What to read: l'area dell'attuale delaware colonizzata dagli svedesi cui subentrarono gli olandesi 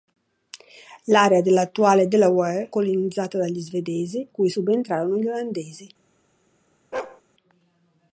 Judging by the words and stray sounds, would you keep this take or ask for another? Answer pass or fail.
fail